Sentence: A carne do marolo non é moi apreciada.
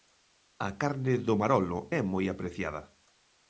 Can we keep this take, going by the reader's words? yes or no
no